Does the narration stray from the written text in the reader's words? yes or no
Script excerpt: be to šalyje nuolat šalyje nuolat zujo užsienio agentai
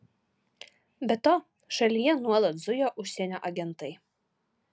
yes